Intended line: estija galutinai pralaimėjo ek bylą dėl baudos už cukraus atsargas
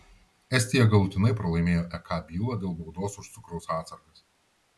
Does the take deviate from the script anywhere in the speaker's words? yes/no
no